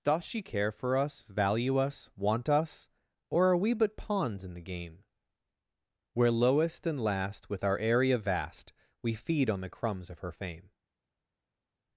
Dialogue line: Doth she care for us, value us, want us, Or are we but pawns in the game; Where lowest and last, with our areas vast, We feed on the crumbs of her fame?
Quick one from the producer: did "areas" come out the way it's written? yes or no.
no